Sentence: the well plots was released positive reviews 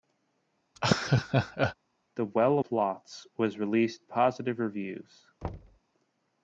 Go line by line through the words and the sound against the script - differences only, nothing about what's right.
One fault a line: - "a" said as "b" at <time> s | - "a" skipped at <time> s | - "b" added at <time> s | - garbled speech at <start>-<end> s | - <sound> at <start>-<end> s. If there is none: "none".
- laugh at 0.8-1.8 s
- thud at 5.4-5.8 s